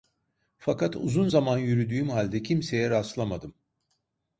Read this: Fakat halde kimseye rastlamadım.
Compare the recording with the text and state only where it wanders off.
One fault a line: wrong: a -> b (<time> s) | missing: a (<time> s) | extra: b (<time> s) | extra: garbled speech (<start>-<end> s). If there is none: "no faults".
extra: uzun zaman yürüdüğüm (0.9 s)